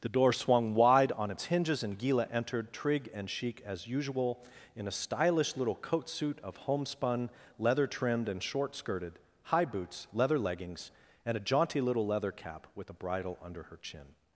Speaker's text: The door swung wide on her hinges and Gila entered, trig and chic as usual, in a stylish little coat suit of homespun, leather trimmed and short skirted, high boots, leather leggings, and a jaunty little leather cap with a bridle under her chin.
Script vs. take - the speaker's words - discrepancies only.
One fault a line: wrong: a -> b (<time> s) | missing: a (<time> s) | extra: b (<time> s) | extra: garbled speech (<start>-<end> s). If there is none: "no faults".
wrong: her -> its (1.3 s)